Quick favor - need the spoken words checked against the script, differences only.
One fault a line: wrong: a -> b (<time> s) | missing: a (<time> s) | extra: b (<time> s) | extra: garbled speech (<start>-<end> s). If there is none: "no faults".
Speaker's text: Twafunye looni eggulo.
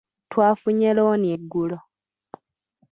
no faults